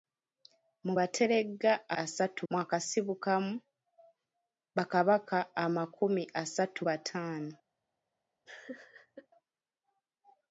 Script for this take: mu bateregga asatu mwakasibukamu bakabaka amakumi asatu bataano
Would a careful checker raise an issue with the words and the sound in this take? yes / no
yes